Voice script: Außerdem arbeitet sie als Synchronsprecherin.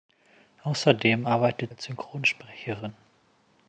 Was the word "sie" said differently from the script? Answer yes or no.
yes